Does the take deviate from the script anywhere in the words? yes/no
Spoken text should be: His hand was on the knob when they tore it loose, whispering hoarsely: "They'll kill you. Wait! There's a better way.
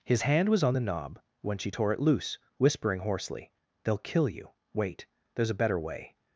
yes